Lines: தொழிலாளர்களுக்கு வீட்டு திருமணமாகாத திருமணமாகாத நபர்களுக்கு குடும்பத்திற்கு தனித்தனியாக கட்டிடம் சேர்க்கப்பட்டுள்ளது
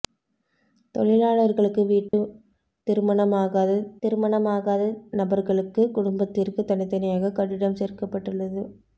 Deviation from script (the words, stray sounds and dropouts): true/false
true